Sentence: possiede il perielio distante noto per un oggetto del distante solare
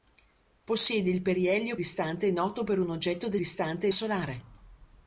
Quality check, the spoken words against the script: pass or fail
pass